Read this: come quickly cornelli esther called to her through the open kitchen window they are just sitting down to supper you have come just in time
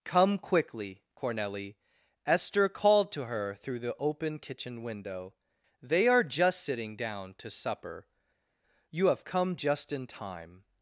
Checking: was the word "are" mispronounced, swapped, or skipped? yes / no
no